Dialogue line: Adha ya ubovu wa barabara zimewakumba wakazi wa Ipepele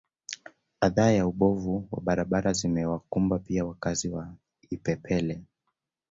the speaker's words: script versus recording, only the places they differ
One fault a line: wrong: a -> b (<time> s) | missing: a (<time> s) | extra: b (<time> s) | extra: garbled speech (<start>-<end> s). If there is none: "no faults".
extra: pia (3.4 s)